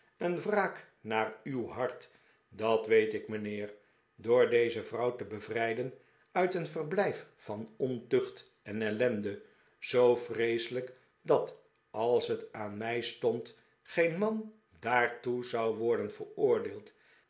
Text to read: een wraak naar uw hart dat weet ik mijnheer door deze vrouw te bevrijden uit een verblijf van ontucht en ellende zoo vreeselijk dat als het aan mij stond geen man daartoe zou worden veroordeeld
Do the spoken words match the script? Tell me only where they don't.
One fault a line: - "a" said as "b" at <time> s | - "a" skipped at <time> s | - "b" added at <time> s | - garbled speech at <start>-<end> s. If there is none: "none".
none